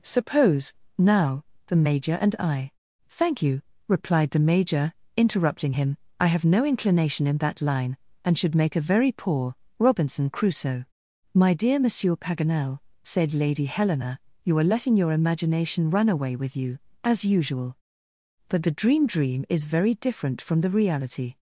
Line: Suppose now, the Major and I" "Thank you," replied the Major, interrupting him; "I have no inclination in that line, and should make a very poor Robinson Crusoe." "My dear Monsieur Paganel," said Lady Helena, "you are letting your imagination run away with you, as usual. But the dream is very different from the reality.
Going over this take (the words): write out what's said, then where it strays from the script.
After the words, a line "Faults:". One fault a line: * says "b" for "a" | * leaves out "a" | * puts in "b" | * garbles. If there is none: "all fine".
Suppose now, the Major and I" "Thank you," replied the Major, interrupting him; "I have no inclination in that line, and should make a very poor Robinson Crusoe." "My dear Monsieur Paganel," said Lady Helena, "you are letting your imagination run away with you, as usual. But the dream dream is very different from the reality.
Faults:
* puts in "dream"